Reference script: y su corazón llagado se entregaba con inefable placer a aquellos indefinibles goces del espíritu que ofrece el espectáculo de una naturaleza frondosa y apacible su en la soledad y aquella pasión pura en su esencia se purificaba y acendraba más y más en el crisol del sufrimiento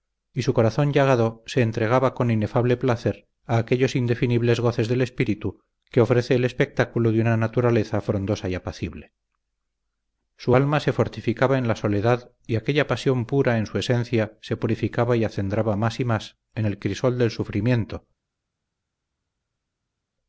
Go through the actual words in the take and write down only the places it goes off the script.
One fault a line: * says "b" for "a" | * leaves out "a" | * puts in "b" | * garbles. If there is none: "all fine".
* puts in "alma se fortificaba"